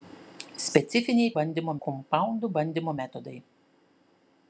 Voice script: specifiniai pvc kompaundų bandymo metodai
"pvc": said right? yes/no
no